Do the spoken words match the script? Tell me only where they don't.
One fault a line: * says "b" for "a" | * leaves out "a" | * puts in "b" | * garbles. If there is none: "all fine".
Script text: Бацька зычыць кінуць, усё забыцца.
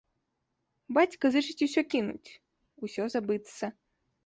* puts in "усё"